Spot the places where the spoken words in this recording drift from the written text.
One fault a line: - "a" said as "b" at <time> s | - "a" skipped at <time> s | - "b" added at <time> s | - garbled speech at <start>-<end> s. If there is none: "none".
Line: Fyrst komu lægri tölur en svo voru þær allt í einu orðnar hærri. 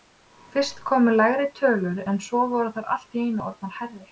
none